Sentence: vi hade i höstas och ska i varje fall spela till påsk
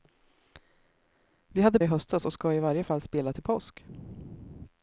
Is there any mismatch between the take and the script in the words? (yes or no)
no